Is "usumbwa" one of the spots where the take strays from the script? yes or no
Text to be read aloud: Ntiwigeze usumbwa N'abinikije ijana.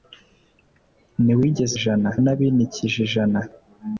yes